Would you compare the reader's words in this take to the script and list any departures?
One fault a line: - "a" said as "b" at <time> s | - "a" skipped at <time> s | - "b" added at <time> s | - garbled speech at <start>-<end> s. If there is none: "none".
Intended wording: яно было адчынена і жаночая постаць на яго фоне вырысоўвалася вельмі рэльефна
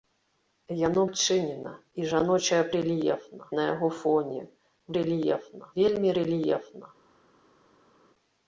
- "было" skipped at 1.0 s
- "постаць" said as "рэльефна" at 2.8 s
- "вырысоўвалася" said as "рэльефна" at 5.0 s